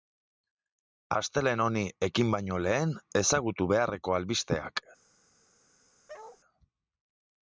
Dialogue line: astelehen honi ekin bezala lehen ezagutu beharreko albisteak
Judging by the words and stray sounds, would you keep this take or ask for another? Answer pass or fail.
fail